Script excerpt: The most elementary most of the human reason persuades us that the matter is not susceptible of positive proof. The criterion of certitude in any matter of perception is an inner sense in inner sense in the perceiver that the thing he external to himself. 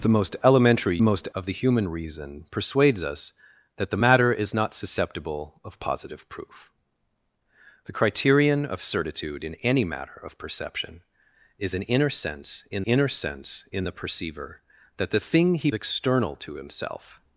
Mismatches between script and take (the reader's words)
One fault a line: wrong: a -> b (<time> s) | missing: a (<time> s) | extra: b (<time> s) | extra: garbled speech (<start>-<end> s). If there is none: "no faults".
no faults